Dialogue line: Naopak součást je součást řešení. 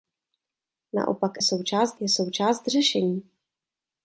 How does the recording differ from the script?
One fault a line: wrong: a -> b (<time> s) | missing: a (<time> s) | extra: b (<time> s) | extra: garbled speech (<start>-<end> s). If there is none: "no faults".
no faults